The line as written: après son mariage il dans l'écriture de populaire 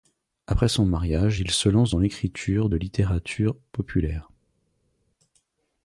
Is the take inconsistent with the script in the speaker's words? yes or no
yes